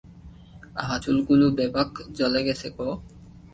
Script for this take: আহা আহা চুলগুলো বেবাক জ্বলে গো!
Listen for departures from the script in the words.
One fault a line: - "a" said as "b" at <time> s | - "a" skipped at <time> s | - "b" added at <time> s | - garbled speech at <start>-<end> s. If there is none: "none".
- "আহা" skipped at 1.0 s
- "গেছে" added at 2.5 s